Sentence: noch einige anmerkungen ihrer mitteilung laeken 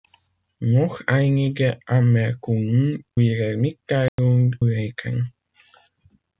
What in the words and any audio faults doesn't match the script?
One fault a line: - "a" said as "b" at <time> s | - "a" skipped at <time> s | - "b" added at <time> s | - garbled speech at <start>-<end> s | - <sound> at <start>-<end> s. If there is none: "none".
- dropout at 4.1-4.2 s